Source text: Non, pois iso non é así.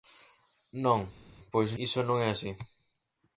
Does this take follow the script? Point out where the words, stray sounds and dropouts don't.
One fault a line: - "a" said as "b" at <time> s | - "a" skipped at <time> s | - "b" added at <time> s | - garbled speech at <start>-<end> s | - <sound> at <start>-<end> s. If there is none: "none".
none